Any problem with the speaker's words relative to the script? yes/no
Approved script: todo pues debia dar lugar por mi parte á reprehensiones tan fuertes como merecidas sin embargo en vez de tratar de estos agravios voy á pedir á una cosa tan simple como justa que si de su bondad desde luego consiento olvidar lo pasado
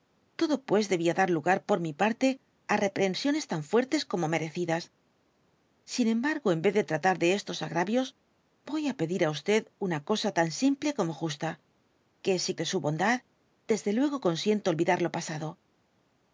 no